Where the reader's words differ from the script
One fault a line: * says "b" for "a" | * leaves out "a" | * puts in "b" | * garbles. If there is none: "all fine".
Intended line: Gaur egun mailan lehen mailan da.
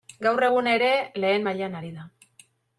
* says "ere" for "mailan"
* puts in "ari"